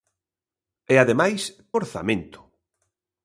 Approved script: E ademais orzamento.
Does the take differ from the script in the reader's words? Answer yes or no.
no